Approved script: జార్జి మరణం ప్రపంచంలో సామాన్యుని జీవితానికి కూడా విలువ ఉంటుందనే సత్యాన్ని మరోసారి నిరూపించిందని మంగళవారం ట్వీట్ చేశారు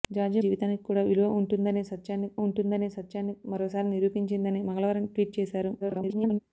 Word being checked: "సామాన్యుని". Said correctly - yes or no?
no